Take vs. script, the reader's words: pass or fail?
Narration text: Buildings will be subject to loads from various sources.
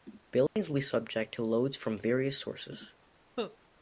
pass